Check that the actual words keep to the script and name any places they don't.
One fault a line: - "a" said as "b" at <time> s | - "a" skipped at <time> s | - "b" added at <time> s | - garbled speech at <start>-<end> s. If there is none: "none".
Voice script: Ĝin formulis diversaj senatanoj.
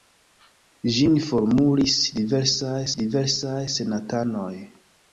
- "diversaj" added at 3.0 s